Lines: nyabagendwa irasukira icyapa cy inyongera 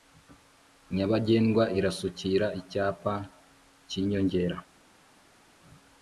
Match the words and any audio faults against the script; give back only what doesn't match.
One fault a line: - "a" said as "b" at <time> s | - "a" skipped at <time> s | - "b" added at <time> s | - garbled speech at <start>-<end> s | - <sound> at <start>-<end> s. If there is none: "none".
none